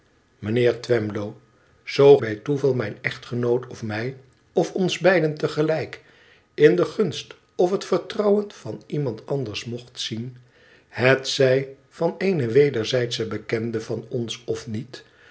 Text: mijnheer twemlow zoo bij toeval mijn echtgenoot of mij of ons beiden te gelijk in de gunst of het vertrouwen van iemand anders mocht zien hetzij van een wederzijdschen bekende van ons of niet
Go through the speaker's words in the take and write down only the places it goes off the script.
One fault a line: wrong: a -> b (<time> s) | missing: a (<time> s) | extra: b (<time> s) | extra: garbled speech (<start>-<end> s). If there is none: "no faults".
no faults